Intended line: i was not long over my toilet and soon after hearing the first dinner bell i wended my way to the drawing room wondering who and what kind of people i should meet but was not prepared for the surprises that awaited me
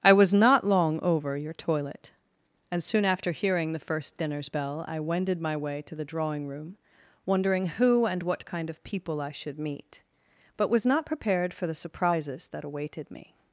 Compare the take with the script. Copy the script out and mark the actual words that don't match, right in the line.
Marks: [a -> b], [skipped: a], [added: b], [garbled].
i was not long over [my -> your] toilet and soon after hearing the first [dinner -> dinners] bell i wended my way to the drawing room wondering who and what kind of people i should meet but was not prepared for the surprises that awaited me